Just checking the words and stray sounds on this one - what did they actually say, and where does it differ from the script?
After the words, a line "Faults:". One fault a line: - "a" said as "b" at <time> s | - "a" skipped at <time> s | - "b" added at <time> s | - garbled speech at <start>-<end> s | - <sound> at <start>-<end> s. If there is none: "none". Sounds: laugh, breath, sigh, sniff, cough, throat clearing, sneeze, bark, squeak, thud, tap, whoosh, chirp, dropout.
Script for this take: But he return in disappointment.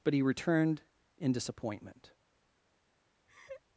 But he returned in disappointment.
Faults:
- "return" said as "returned" at 0.2 s
- laugh at 3.3-3.6 s